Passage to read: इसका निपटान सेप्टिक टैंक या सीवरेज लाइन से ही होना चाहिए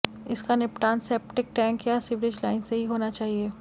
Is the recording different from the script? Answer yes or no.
no